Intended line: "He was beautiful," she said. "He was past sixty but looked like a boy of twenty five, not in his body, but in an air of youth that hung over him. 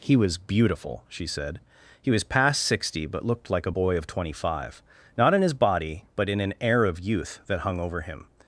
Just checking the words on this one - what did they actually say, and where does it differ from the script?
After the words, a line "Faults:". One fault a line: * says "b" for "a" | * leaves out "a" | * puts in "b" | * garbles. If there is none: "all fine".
"He was beautiful," she said. "He was past sixty but looked like a boy of twenty five, not in his body, but in an air of youth that hung over him.
Faults:
all fine